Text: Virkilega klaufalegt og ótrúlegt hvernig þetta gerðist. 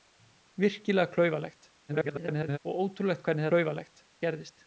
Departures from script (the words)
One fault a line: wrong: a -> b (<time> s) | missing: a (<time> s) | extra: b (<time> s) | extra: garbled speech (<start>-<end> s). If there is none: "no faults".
extra: garbled speech (1.9-2.6 s)
wrong: þetta -> klaufalegt (3.5 s)